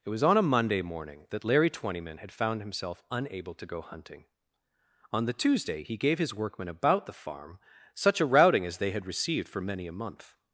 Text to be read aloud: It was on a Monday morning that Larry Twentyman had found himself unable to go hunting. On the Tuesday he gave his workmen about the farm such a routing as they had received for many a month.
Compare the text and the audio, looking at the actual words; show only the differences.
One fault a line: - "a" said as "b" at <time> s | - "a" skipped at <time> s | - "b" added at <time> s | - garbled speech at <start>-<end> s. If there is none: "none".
none